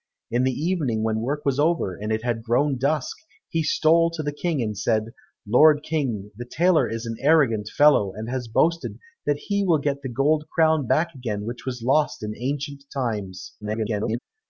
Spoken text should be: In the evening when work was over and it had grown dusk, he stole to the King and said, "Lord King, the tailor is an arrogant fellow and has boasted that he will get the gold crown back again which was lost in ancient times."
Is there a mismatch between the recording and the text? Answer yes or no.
yes